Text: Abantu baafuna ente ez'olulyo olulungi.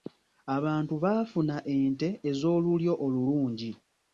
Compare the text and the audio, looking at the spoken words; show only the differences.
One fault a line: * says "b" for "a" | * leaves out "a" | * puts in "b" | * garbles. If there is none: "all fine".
all fine